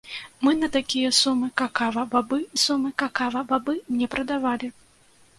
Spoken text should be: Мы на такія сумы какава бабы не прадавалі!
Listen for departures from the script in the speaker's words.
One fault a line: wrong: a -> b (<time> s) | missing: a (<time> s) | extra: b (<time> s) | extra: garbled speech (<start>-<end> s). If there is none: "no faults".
extra: сумы какава бабы (2.6 s)